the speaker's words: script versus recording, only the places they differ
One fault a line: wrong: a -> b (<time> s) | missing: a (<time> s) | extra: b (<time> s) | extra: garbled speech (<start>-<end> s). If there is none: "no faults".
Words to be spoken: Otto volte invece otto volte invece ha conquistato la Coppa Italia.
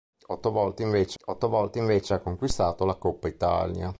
no faults